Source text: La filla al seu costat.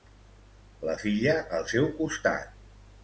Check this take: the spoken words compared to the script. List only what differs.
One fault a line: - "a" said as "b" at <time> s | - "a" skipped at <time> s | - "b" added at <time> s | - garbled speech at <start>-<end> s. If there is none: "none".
none